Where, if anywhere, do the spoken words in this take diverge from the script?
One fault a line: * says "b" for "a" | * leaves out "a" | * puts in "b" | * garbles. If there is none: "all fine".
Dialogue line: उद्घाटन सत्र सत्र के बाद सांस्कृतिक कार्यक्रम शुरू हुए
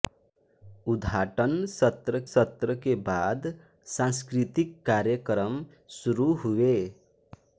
all fine